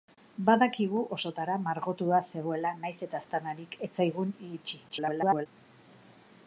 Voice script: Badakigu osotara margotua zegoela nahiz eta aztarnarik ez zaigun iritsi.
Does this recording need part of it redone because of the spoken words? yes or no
yes